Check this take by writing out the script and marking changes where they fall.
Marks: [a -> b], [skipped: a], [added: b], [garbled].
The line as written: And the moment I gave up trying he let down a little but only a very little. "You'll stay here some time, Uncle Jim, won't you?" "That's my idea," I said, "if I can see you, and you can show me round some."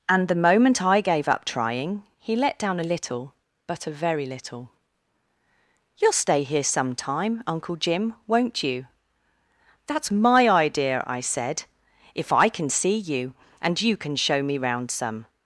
And the moment I gave up trying he let down a little but [skipped: only] a very little. "You'll stay here some time, Uncle Jim, won't you?" "That's my idea," I said, "if I can see you, and you can show me round some."